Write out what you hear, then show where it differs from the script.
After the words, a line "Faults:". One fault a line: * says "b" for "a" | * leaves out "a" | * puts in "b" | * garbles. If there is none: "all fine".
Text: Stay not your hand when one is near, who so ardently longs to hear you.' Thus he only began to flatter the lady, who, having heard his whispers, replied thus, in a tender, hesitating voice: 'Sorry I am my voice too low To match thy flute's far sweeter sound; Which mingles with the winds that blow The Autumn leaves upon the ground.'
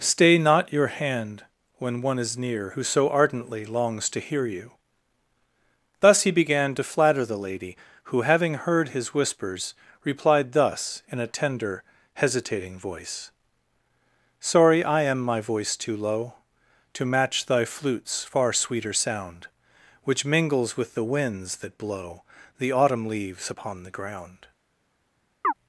Stay not your hand when one is near, who so ardently longs to hear you.' Thus he began to flatter the lady, who, having heard his whispers, replied thus, in a tender, hesitating voice: 'Sorry I am my voice too low To match thy flute's far sweeter sound; Which mingles with the winds that blow The Autumn leaves upon the ground.'
Faults:
* leaves out "only"